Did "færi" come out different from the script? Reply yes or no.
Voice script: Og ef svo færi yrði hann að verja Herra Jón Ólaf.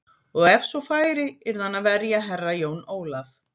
no